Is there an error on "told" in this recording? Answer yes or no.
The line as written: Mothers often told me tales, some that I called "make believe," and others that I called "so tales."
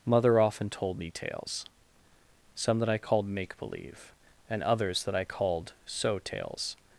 no